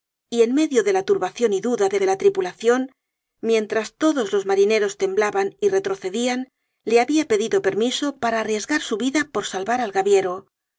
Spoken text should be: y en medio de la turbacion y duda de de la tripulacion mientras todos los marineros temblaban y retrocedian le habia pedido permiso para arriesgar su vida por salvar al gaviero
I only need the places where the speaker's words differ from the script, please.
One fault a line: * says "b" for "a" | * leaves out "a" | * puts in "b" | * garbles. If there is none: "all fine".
all fine